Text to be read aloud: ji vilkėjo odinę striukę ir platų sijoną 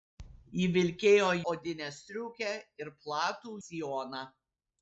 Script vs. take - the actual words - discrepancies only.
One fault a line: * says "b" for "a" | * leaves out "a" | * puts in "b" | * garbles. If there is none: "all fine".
all fine